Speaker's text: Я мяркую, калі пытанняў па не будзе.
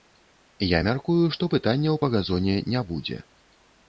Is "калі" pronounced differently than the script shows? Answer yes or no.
yes